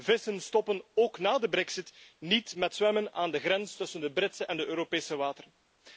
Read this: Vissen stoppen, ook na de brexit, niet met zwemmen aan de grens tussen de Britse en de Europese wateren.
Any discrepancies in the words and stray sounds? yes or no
no